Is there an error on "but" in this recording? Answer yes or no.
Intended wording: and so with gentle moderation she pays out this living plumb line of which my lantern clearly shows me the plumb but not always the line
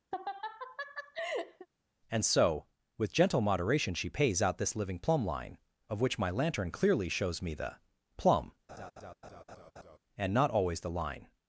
yes